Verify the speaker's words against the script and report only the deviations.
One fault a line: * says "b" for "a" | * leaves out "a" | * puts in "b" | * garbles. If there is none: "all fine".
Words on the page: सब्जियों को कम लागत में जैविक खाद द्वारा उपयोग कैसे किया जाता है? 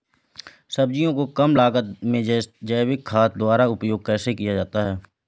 all fine